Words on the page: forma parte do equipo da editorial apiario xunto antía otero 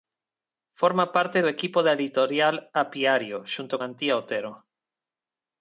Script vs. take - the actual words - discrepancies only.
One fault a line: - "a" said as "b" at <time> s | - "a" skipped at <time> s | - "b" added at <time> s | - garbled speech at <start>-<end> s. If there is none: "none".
none